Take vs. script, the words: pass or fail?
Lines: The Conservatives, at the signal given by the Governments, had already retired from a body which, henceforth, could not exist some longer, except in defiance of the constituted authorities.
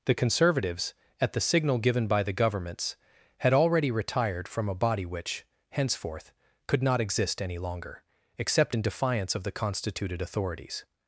fail